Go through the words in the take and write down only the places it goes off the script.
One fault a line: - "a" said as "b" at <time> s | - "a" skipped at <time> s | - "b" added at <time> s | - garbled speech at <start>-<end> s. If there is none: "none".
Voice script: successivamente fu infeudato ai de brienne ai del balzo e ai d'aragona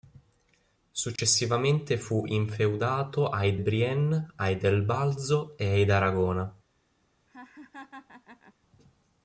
- "de" skipped at 3.5 s